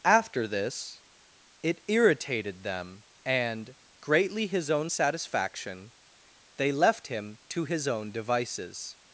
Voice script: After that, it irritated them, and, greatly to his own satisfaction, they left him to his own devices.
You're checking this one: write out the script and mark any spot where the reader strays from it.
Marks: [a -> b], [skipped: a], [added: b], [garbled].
After [that, -> this] it irritated them, and, greatly [skipped: to] his own satisfaction, they left him to his own devices.